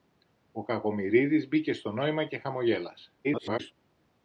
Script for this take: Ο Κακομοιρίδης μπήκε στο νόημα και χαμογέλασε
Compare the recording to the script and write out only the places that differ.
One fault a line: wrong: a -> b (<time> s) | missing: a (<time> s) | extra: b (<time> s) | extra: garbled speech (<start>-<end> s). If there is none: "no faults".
extra: garbled speech (3.2-3.7 s)